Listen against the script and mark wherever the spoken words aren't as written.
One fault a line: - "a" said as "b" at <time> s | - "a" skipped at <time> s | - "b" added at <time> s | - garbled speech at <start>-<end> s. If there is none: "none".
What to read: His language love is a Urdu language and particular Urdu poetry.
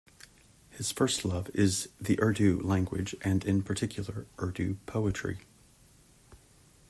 - "language" said as "first" at 0.9 s
- "a" said as "the" at 2.0 s
- "in" added at 3.4 s